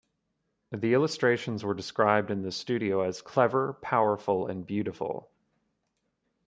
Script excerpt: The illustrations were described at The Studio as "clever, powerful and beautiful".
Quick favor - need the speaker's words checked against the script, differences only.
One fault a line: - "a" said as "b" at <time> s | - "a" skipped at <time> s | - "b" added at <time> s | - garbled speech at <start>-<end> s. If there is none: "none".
- "at" said as "in" at 2.3 s